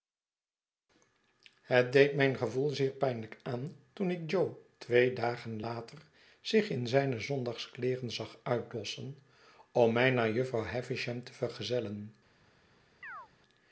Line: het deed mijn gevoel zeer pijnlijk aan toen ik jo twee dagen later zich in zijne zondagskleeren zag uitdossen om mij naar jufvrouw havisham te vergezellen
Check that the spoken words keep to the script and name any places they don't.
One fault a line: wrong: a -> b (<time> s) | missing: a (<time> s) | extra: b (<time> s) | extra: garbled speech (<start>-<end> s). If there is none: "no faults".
no faults